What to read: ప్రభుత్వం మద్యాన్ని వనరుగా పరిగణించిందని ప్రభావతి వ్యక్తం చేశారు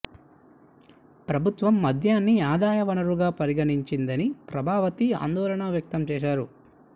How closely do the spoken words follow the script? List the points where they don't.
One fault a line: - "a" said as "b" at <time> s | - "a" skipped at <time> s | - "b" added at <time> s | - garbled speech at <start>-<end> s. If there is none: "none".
- "ఆదాయ" added at 2.5 s
- "ఆందోళన" added at 5.2 s